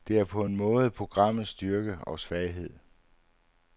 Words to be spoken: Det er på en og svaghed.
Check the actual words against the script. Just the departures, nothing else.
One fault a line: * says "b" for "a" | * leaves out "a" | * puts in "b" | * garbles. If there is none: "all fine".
* puts in "måde programmets styrke"